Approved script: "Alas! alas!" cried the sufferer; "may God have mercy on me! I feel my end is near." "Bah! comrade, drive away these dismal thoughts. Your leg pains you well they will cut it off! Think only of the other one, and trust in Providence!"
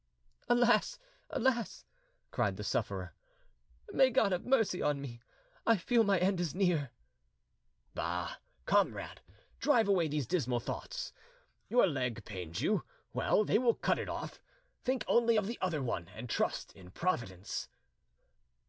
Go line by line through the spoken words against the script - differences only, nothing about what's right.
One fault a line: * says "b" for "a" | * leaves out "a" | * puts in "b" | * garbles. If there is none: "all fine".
all fine